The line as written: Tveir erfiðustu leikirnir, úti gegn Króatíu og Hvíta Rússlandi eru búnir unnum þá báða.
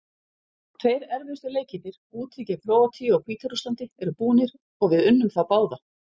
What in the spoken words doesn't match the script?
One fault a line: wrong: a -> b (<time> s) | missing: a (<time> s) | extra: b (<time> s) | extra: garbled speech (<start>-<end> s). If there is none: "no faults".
extra: og við (4.6 s)